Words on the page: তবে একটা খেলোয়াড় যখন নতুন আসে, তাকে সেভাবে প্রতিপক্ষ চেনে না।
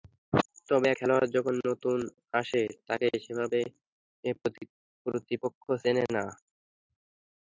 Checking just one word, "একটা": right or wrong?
wrong